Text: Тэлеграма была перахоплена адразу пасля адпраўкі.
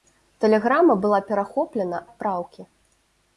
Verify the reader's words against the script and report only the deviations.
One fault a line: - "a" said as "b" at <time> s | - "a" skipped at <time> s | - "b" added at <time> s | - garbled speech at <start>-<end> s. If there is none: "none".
- "адразу пасля" skipped at 2.0 s